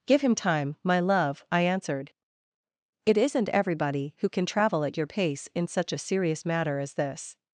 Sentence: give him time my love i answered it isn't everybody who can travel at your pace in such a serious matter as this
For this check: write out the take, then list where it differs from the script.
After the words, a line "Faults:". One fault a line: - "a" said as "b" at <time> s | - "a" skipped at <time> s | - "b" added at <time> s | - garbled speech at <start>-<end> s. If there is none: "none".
give him time my love i answered it isn't everybody who can travel at your pace in such a serious matter as this
Faults:
none